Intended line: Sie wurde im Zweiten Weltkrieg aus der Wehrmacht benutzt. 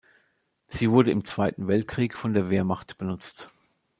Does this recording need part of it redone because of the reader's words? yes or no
yes